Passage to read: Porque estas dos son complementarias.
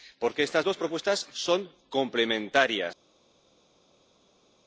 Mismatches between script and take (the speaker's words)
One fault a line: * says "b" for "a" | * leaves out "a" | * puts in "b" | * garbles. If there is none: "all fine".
* puts in "propuestas"